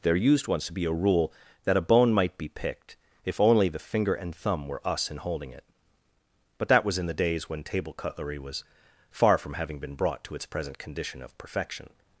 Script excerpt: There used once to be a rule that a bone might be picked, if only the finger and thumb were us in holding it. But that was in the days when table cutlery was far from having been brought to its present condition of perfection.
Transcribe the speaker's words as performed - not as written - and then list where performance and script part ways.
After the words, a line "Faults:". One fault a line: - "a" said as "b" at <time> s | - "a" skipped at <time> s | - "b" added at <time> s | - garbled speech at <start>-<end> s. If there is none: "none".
There used once to be a rule that a bone might be picked, if only the finger and thumb were us in holding it. But that was in the days when table cutlery was far from having been brought to its present condition of perfection.
Faults:
none